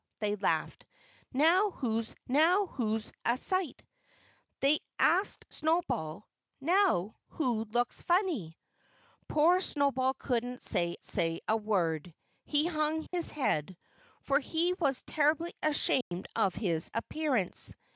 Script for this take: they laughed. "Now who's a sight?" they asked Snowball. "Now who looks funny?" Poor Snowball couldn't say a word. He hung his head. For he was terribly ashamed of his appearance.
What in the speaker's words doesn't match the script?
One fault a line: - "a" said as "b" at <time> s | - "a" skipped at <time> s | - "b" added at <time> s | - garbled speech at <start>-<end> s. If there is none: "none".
- "now who's" added at 2.3 s
- "say" added at 11.0 s